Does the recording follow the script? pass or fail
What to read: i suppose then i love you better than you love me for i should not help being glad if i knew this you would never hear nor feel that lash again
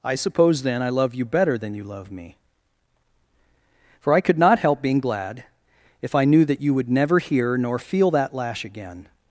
fail